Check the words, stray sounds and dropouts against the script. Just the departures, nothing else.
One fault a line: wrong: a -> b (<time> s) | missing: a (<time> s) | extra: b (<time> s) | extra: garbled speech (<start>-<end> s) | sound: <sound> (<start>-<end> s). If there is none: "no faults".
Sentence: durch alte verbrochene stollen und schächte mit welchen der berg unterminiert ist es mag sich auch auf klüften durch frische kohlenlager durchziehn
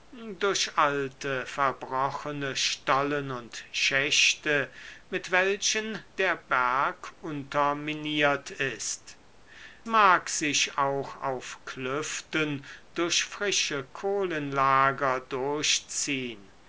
missing: es (9.2 s)